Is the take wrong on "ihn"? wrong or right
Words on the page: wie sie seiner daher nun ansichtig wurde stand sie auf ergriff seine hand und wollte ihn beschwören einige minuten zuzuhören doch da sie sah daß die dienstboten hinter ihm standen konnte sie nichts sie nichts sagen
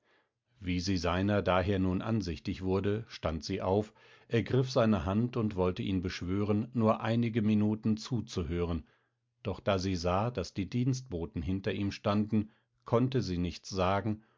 right